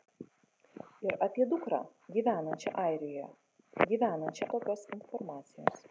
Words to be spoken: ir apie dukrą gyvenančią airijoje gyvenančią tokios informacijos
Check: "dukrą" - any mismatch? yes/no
no